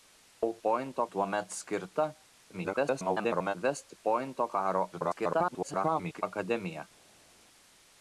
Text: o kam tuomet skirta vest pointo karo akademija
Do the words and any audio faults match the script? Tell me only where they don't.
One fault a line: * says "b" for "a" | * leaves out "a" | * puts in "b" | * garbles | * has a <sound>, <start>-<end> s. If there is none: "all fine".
* says "pointo" for "kam"
* garbles
* garbles